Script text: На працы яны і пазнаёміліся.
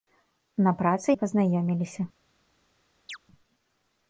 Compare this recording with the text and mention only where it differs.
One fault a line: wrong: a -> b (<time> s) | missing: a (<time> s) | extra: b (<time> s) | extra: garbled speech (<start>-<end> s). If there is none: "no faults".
missing: яны (1.1 s)